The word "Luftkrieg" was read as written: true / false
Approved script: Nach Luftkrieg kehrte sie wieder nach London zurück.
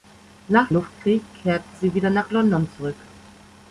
true